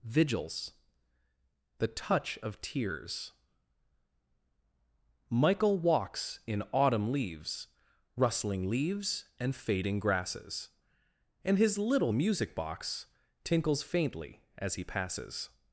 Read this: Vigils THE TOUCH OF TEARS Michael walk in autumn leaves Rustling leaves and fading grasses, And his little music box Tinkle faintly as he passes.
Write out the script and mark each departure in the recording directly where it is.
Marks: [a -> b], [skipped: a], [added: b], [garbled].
Vigils THE TOUCH OF TEARS Michael [walk -> walks] in autumn leaves Rustling leaves and fading grasses, And his little music box [Tinkle -> Tinkles] faintly as he passes.